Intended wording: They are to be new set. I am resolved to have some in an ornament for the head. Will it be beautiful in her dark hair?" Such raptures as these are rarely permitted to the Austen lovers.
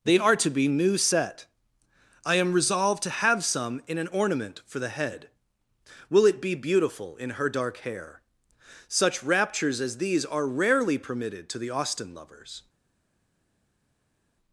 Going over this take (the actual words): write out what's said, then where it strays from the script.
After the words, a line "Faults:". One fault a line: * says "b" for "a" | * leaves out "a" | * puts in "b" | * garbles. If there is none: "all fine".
They are to be new set. I am resolved to have some in an ornament for the head. Will it be beautiful in her dark hair?" Such raptures as these are rarely permitted to the Austen lovers.
Faults:
all fine